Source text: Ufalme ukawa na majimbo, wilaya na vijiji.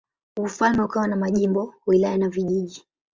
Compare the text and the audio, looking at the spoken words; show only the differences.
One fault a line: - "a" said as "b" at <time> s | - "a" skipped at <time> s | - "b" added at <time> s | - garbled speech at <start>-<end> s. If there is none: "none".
none